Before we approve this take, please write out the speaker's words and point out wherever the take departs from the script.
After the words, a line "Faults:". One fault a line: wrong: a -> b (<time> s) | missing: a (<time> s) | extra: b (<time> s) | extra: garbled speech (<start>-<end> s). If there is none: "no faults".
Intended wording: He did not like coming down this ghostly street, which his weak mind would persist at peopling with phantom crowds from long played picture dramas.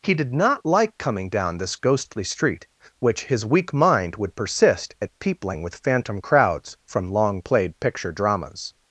He did not like coming down this ghostly street, which his weak mind would persist at peopling with phantom crowds from long played picture dramas.
Faults:
no faults